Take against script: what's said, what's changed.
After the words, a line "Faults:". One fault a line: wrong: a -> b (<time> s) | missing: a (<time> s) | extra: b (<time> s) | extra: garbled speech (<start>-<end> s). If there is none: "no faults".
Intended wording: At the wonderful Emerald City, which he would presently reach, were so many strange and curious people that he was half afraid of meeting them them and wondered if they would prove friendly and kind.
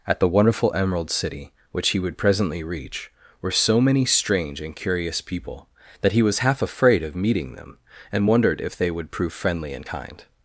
At the wonderful Emerald City, which he would presently reach, were so many strange and curious people that he was half afraid of meeting them and wondered if they would prove friendly and kind.
Faults:
missing: them (7.8 s)